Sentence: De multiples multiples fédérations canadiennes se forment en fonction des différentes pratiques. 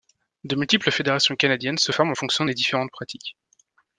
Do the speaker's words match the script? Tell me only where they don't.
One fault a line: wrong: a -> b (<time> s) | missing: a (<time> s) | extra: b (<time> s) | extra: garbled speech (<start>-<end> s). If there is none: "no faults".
missing: multiples (0.9 s)